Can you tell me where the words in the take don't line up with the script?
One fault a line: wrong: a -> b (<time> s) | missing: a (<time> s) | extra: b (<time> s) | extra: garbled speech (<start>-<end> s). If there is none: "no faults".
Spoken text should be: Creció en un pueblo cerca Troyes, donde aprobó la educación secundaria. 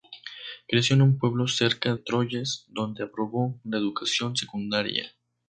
no faults